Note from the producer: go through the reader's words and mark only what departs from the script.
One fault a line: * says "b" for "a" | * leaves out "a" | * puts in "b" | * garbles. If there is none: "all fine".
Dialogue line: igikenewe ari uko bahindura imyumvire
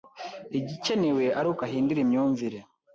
all fine